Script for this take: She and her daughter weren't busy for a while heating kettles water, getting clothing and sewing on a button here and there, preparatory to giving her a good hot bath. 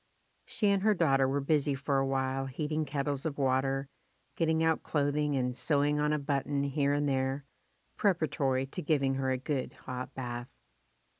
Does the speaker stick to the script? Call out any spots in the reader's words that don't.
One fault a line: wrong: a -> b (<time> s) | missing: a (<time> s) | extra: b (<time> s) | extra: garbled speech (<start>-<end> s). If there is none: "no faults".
wrong: weren't -> were (1.3 s)
extra: of (3.2 s)
extra: out (4.6 s)